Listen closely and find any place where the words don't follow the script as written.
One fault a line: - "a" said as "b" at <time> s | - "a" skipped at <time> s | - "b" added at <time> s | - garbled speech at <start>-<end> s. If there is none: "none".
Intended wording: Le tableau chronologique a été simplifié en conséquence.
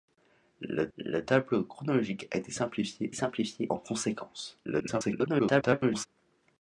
- "le" added at 1.0 s
- "simplifié" added at 3.1 s
- garbled speech at 4.6-6.1 s